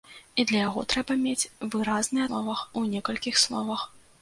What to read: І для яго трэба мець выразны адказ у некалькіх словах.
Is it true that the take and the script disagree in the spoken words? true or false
true